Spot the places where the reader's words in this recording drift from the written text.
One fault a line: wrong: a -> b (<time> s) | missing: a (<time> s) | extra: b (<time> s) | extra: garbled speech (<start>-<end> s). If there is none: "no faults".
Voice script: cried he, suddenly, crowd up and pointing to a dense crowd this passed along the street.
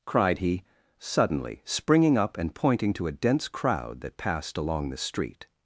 wrong: crowd -> springing (1.6 s)
wrong: this -> that (4.0 s)